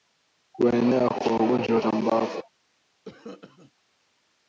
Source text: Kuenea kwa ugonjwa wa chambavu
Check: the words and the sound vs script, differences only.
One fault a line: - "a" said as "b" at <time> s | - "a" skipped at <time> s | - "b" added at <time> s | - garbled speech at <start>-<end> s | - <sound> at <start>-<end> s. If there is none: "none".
- cough at 3.0-3.7 s